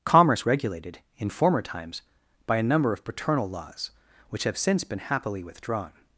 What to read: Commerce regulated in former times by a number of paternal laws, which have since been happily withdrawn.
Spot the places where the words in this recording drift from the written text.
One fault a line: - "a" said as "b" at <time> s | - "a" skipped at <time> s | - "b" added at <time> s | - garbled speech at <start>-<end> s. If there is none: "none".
none